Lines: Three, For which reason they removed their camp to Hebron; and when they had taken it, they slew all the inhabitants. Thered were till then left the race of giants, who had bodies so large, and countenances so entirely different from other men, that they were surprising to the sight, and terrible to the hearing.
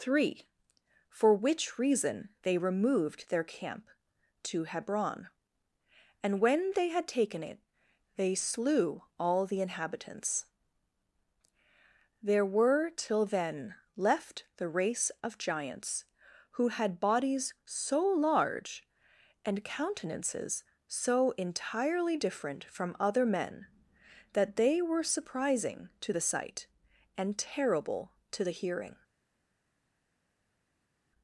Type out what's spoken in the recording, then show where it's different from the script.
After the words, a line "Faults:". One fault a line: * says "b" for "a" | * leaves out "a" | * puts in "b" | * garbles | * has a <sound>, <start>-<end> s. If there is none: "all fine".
Three, For which reason they removed their camp to Hebron; and when they had taken it, they slew all the inhabitants. There were till then left the race of giants, who had bodies so large, and countenances so entirely different from other men, that they were surprising to the sight, and terrible to the hearing.
Faults:
* says "There" for "Thered"